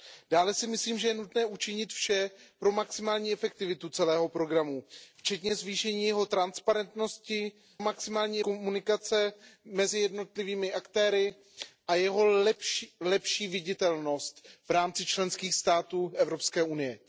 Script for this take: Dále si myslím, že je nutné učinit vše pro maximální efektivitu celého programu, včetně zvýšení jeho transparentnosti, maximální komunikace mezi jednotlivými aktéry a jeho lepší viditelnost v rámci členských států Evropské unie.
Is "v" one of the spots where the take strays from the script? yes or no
no